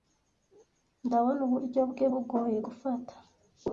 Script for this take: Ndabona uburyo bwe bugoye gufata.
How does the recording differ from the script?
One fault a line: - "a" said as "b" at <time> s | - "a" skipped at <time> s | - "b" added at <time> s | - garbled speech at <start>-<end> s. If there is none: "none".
none